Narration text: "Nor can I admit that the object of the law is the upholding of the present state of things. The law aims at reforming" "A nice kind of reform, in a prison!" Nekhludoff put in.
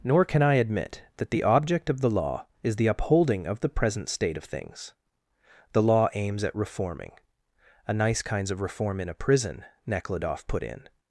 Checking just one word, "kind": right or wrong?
wrong